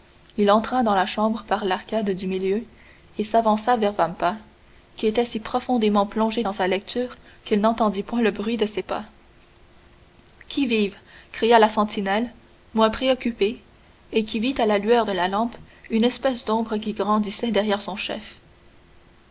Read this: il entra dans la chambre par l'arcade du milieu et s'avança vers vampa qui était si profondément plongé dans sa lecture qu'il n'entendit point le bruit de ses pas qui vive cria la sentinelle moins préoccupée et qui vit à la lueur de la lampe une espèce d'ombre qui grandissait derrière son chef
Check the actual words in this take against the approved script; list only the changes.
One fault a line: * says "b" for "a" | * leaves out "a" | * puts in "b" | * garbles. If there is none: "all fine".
all fine